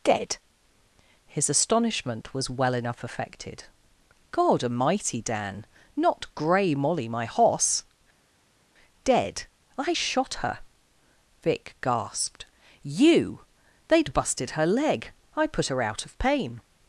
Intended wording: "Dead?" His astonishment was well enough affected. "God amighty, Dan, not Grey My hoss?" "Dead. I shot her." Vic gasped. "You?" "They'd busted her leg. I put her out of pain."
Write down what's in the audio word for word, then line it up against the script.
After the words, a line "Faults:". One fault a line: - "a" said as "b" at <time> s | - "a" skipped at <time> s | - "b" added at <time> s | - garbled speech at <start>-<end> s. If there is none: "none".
"Dead?" His astonishment was well enough affected. "God amighty, Dan, not Grey Molly my hoss?" "Dead. I shot her." Vic gasped. "You?" "They'd busted her leg. I put her out of pain."
Faults:
- "Molly" added at 6.7 s